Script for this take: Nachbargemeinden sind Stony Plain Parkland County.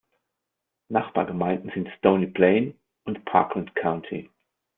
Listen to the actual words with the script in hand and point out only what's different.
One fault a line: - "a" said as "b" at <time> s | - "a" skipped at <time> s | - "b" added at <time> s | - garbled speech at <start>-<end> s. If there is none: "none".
- "und" added at 3.0 s